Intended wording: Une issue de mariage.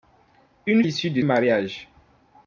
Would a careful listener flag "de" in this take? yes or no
no